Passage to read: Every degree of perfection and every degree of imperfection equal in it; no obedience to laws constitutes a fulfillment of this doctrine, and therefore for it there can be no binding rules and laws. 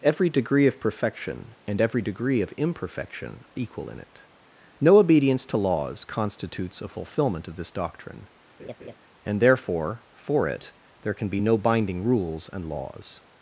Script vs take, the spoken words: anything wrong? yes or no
no